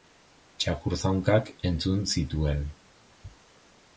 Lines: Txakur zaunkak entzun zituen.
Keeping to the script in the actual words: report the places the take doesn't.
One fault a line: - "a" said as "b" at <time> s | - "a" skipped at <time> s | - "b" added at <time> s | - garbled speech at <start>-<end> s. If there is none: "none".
none